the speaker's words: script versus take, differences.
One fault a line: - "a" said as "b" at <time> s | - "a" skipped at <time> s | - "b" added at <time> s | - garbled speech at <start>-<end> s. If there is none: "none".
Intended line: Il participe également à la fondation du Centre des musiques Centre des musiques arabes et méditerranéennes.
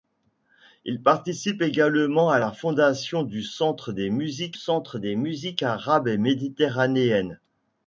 none